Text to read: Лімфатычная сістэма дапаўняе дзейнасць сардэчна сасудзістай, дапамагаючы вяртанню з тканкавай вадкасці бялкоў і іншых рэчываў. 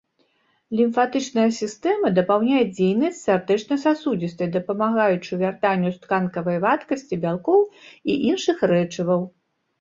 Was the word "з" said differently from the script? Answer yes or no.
no